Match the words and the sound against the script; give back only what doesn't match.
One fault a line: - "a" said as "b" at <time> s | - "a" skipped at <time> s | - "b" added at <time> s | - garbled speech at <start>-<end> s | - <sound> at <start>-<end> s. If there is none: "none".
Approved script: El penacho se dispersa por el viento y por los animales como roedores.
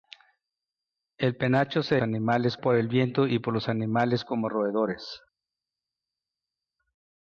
- "dispersa" said as "animales" at 2.0 s